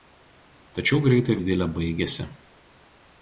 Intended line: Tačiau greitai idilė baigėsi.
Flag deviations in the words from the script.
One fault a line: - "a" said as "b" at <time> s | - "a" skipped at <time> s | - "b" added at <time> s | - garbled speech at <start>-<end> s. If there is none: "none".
none